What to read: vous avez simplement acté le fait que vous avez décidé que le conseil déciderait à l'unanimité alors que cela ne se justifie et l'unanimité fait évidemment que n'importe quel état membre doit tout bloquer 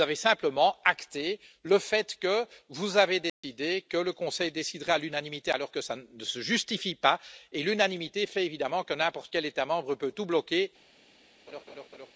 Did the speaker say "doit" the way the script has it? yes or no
no